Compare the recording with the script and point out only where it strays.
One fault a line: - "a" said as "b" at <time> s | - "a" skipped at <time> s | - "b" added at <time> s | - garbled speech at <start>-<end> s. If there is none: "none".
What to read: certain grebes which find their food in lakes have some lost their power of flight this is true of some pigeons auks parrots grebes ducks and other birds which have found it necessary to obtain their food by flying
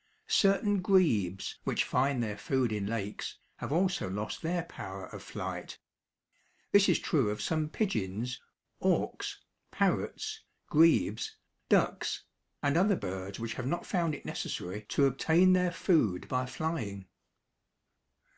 - "some" said as "also" at 3.7 s
- "not" added at 13.7 s